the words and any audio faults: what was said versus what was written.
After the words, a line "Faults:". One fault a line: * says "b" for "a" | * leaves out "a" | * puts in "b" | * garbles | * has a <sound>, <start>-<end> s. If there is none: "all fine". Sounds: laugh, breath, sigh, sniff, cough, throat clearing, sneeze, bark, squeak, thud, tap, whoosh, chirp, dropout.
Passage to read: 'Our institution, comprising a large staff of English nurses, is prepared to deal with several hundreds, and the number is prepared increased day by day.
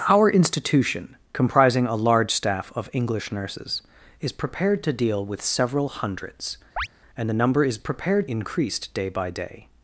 'Our institution, comprising a large staff of English nurses, is prepared to deal with several hundreds, and the number is prepared increased day by day.
Faults:
* has a chirp, 6.8-6.9 s